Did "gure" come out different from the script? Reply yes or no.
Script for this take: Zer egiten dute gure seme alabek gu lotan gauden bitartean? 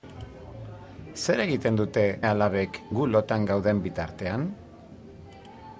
yes